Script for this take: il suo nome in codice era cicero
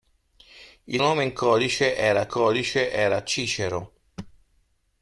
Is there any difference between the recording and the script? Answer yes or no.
yes